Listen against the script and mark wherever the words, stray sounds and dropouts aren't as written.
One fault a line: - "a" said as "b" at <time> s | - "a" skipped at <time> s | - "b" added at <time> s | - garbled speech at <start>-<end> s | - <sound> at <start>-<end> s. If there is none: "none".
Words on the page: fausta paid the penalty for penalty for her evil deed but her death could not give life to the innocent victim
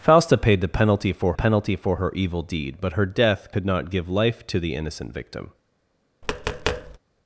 - tap at 6.2-7.0 s